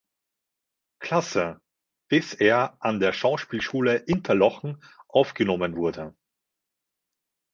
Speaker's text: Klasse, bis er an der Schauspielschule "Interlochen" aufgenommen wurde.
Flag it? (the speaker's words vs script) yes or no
no